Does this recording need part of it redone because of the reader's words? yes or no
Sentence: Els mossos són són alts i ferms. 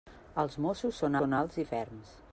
no